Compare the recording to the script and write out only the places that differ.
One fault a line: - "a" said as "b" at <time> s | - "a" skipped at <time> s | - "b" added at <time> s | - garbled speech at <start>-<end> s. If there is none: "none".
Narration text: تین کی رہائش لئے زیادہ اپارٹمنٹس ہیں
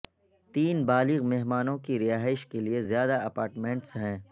- "بالغ مہمانوں" added at 0.8 s
- "کے" added at 2.5 s